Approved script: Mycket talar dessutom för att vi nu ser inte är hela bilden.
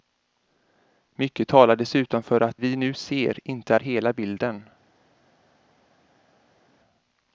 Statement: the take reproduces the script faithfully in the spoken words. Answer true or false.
true